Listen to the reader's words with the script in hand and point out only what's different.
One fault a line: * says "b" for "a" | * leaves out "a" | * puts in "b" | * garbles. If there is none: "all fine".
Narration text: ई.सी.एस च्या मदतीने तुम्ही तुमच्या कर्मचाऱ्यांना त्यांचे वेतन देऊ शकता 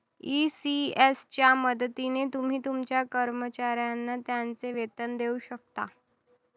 all fine